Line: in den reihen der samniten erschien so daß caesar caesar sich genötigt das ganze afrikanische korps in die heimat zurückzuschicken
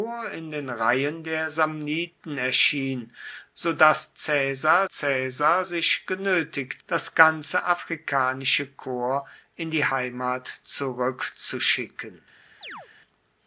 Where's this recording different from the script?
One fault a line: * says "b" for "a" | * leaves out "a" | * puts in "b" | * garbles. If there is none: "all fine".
all fine